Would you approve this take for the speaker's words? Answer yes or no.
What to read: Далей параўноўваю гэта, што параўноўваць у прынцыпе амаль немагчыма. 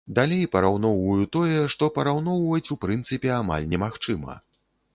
no